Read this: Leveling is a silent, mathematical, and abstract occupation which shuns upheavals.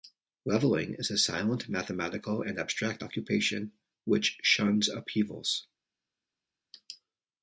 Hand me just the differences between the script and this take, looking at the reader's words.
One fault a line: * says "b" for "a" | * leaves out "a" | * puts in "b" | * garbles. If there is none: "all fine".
all fine